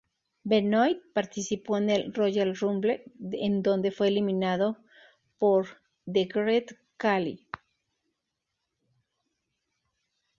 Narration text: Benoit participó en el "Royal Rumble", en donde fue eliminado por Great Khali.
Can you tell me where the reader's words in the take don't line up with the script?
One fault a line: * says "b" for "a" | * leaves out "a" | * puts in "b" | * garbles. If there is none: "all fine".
* puts in "The"